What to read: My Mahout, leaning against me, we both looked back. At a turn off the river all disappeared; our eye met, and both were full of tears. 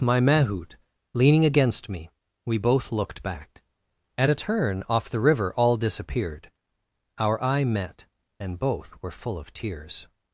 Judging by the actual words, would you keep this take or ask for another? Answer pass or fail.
pass